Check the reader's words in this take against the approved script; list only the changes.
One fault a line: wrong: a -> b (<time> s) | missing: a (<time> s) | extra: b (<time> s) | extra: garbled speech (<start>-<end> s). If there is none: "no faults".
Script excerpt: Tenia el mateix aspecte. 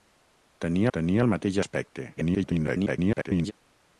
extra: tenia (1.0 s)
extra: garbled speech (2.1-3.5 s)